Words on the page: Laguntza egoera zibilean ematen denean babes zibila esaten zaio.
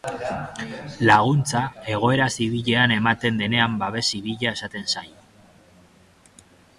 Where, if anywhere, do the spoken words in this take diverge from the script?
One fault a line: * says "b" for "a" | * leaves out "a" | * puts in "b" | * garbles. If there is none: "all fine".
all fine